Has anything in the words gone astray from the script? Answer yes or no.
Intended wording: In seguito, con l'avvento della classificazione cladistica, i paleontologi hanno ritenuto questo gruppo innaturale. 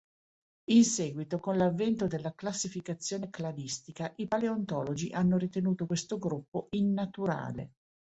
no